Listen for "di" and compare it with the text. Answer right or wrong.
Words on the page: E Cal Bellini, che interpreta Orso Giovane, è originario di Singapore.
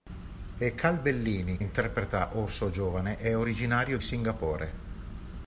wrong